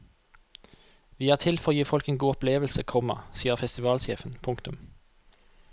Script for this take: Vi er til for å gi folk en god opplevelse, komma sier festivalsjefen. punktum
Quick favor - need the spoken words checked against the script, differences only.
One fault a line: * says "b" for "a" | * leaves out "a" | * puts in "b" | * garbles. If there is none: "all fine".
all fine